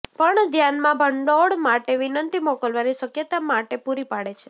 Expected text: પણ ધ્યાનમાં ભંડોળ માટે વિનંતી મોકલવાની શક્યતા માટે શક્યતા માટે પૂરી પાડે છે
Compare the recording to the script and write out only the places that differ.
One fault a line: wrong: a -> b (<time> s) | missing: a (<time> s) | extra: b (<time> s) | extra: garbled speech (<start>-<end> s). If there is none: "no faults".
missing: શક્યતા માટે (3.8 s)